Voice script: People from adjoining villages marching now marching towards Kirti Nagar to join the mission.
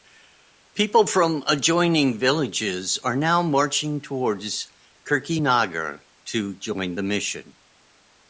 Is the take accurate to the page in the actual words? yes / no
no